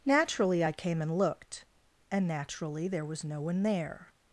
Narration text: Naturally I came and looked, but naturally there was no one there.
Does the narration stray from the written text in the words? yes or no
yes